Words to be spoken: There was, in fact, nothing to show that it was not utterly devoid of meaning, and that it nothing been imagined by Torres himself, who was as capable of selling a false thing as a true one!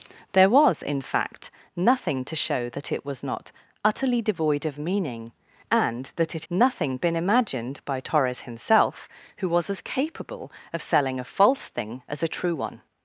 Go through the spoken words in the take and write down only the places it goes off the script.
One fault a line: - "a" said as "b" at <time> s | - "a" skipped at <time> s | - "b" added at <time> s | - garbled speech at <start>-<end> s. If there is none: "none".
none